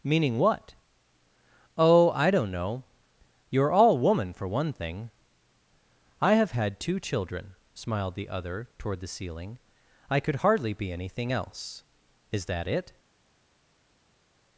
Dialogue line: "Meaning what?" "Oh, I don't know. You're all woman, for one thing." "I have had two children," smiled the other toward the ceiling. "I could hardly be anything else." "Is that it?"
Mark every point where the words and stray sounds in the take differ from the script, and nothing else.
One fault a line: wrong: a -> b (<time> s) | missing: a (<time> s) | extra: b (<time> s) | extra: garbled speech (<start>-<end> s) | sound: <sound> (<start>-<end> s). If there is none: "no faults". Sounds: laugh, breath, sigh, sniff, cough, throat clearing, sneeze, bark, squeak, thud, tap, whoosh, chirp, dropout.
no faults